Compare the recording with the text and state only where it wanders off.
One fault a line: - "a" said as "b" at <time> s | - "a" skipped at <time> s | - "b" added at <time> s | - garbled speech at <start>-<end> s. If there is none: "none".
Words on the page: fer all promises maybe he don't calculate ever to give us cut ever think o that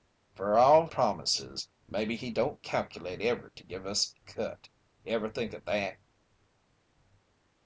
none